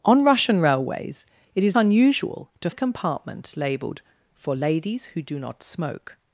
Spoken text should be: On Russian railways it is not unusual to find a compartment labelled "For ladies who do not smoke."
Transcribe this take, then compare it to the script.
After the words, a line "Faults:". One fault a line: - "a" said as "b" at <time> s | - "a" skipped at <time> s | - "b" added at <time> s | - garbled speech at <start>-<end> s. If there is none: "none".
On Russian railways it is unusual to a compartment labelled "For ladies who do not smoke."
Faults:
- "not" skipped at 1.8 s
- "find" skipped at 2.7 s